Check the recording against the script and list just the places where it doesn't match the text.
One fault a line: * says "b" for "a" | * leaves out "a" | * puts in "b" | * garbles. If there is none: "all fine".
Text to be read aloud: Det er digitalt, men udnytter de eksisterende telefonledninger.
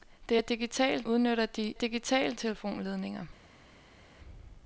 * leaves out "men"
* says "digitalt" for "eksisterende"